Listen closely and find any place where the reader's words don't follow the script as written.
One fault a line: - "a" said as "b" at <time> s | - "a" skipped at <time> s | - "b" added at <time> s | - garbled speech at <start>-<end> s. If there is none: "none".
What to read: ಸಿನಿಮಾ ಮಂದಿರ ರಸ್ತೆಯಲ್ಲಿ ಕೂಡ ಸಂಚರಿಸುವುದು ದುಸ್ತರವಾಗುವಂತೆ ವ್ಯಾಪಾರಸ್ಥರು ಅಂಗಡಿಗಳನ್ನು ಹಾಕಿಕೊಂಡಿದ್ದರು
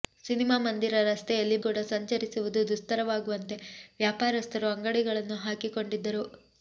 none